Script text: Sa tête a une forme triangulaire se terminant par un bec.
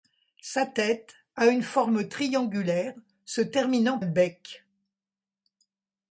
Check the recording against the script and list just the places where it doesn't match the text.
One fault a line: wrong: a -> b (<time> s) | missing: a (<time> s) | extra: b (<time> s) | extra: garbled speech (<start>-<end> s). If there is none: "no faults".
missing: par un (4.0 s)